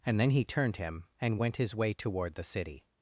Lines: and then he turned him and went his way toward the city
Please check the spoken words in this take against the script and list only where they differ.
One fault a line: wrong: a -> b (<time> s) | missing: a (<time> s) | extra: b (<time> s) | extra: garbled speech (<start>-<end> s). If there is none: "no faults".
no faults